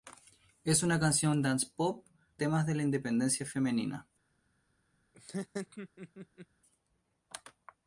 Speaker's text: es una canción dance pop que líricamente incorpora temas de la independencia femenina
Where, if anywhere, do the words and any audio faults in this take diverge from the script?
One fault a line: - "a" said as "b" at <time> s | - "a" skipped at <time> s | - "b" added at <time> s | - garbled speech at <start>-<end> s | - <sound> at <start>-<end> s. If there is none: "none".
- "que líricamente incorpora" skipped at 2.1 s
- laugh at 5.1-6.5 s